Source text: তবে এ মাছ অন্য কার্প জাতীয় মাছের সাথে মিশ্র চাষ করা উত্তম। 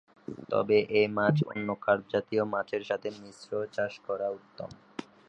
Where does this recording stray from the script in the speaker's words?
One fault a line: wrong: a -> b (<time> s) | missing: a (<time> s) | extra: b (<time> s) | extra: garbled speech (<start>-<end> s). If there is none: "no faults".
no faults